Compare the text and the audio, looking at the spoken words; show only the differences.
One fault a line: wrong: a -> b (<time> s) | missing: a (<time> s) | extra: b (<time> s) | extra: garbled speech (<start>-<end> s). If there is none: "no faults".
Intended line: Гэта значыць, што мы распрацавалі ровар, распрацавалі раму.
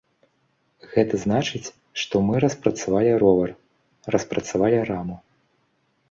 no faults